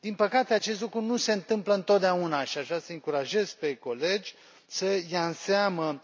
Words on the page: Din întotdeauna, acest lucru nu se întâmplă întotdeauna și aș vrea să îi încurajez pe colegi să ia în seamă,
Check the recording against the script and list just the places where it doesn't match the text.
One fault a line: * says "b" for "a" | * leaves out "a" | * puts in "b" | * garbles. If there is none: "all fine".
* says "păcate" for "întotdeauna"